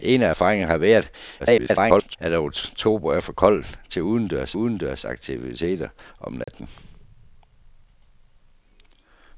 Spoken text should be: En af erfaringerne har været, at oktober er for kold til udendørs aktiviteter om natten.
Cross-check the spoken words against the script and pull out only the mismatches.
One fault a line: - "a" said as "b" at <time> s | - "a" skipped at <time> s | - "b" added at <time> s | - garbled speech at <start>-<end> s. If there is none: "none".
- garbled speech at 1.4-2.2 s
- "udendørs" added at 4.5 s